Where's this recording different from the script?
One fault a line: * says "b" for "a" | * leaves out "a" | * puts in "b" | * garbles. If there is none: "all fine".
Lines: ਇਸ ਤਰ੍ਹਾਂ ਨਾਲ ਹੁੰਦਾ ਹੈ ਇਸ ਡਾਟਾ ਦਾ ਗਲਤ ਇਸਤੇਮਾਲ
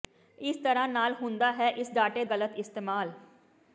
* leaves out "ਦਾ"